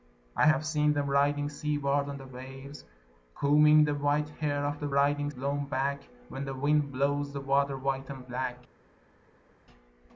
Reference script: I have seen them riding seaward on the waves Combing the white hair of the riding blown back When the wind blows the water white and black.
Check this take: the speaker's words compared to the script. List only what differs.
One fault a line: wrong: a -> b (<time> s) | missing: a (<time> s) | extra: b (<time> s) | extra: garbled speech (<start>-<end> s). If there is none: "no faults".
no faults